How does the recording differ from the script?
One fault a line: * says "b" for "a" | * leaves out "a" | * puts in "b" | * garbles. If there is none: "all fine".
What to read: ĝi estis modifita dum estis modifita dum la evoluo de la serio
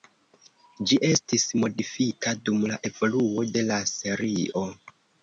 * leaves out "estis modifita dum"